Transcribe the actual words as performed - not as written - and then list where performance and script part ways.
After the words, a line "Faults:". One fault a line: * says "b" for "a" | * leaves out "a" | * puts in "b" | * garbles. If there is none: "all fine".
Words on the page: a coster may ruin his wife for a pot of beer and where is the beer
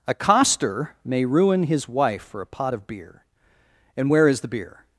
a coster may ruin his wife for a pot of beer and where is the beer
Faults:
all fine